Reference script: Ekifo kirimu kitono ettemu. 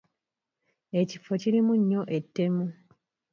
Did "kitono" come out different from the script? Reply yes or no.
yes